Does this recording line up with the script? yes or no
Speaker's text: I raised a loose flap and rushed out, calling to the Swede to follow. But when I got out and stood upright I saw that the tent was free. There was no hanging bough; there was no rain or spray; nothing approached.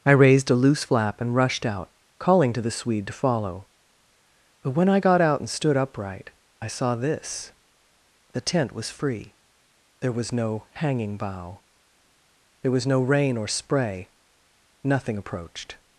no